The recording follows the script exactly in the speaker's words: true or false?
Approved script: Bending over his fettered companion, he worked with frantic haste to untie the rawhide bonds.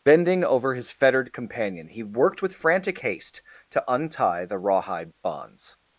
true